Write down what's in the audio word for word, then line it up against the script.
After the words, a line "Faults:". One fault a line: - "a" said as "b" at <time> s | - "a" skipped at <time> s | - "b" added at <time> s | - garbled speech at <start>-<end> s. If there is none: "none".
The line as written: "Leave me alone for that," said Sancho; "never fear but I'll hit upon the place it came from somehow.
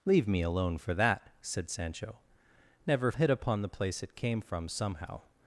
"Leave me alone for that," said Sancho; "never hit upon the place it came from somehow.
Faults:
- "fear but I'll" skipped at 3.1 s